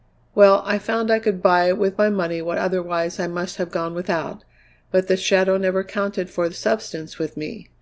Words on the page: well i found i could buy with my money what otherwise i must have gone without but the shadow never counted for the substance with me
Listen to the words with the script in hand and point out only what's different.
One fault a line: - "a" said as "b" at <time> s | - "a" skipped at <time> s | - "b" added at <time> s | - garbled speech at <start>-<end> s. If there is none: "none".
none